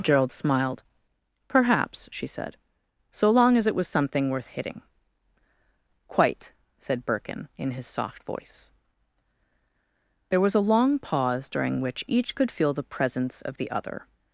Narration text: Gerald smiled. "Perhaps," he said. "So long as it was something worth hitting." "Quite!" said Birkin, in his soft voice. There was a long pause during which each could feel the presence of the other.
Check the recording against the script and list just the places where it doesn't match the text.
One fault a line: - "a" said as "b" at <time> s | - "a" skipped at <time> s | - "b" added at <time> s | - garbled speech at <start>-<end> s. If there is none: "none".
- "he" said as "she" at 2.1 s